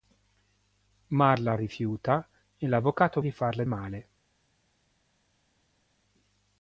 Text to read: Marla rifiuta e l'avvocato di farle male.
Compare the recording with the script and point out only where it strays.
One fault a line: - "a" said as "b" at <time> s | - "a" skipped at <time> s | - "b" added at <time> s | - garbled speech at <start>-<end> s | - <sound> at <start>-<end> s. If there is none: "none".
none